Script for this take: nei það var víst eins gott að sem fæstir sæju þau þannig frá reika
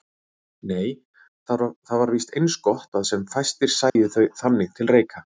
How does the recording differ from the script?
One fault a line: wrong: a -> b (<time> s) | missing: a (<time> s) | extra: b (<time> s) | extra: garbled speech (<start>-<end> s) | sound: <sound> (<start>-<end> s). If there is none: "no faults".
sound: dropout (3.9-4.0 s)
wrong: frá -> til (4.8 s)